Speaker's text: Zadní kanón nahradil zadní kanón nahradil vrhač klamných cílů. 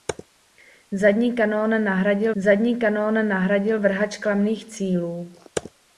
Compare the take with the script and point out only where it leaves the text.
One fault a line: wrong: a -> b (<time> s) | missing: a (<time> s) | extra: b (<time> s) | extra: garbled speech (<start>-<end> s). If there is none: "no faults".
no faults